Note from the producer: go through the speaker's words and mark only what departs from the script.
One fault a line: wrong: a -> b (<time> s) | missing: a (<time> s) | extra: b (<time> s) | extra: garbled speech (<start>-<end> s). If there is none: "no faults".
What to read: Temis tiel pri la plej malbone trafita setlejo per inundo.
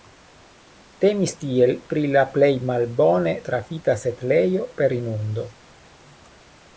no faults